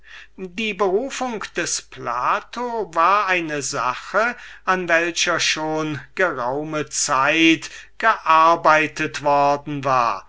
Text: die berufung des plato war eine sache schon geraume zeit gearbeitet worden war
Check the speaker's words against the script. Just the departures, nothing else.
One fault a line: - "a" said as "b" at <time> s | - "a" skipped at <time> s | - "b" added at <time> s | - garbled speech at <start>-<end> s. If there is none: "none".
- "an welcher" added at 4.7 s